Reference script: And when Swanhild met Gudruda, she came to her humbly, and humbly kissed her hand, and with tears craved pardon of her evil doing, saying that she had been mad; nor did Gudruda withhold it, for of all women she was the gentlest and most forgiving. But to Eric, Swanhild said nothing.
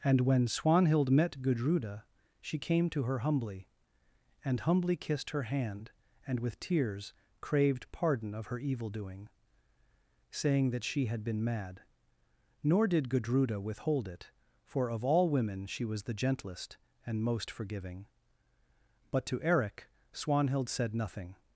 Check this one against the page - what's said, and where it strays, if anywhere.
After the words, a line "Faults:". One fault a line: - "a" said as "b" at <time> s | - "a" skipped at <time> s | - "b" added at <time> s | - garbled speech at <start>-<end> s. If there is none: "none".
And when Swanhild met Gudruda, she came to her humbly, and humbly kissed her hand, and with tears craved pardon of her evil doing, saying that she had been mad; nor did Gudruda withhold it, for of all women she was the gentlest and most forgiving. But to Eric, Swanhild said nothing.
Faults:
none